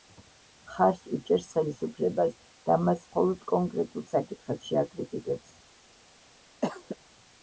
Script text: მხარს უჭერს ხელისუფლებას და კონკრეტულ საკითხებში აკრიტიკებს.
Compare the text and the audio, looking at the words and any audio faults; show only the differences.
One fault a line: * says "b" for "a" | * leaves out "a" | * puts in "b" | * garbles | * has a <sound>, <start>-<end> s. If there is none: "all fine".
* puts in "მას მხოლოდ"
* has a cough, 6.6-7.0 s